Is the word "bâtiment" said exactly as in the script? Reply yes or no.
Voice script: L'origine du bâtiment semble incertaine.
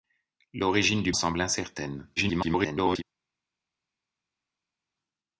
no